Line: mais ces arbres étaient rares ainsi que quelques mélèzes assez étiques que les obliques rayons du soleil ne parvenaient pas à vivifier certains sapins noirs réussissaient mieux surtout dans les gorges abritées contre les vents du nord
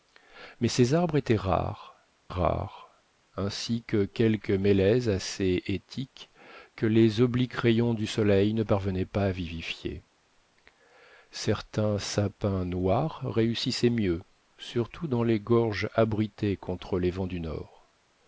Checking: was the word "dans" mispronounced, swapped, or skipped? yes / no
no